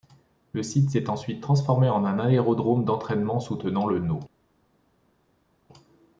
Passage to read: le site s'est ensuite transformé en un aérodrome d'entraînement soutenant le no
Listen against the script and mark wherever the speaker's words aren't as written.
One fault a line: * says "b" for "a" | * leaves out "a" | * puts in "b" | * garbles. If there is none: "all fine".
all fine